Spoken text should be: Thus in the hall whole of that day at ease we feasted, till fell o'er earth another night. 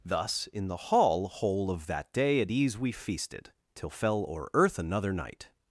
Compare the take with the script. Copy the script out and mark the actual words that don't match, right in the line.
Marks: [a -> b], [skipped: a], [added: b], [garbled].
Thus in the hall whole of that day at ease we feasted, till fell o'er earth another night.